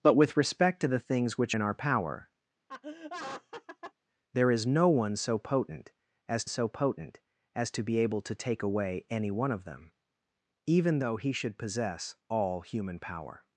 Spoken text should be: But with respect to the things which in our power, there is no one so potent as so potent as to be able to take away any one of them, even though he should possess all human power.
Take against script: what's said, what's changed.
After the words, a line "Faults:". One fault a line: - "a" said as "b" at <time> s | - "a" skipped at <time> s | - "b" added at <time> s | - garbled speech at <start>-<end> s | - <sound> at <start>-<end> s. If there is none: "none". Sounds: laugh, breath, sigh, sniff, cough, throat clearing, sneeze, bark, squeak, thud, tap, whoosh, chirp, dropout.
But with respect to the things which in our power, there is no one so potent as so potent as to be able to take away any one of them, even though he should possess all human power.
Faults:
- laugh at 2.7-3.9 s